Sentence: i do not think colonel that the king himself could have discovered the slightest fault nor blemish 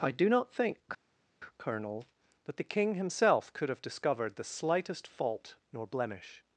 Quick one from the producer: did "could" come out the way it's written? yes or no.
yes